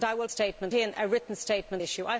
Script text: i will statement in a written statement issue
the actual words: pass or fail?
pass